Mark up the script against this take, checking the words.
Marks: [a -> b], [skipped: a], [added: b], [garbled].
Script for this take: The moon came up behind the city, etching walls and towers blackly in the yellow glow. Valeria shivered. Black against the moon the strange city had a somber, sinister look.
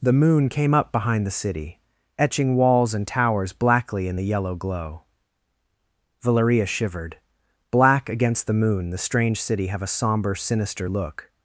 The moon came up behind the city, etching walls and towers blackly in the yellow glow. Valeria shivered. Black against the moon the strange city [had -> have] a somber, sinister look.